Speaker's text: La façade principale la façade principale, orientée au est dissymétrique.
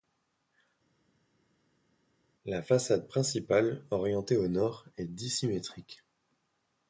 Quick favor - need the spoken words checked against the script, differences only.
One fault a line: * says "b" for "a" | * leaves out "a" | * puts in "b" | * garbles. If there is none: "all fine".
* leaves out "la façade principale"
* puts in "nord"